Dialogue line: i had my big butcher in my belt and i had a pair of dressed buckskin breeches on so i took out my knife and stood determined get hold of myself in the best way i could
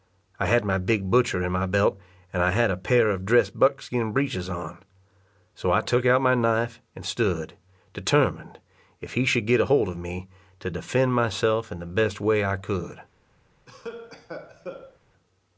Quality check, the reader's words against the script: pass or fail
fail